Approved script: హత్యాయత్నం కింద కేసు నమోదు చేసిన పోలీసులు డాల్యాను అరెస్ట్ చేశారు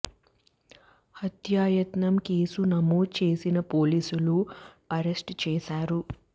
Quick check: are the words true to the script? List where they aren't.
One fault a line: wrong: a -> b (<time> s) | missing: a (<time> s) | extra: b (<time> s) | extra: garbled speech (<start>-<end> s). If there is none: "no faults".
missing: కింద (2.1 s)
missing: డాల్యాను (4.4 s)